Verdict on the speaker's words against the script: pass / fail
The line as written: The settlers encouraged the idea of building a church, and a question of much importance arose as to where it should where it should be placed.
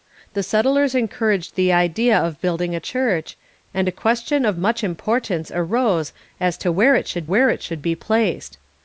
pass